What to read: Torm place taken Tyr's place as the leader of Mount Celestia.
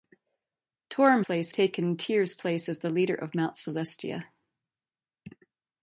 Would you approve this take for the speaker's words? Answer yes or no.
yes